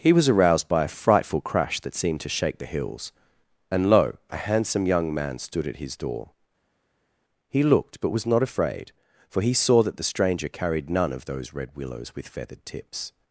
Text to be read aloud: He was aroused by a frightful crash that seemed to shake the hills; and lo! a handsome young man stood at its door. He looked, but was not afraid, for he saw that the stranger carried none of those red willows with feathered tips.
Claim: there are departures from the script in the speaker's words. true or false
true